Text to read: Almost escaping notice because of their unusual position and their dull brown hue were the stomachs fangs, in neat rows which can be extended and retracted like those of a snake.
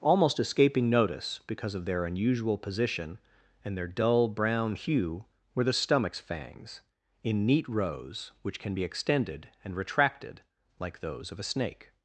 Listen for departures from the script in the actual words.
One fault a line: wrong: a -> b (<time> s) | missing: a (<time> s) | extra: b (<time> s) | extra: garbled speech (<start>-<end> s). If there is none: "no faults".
no faults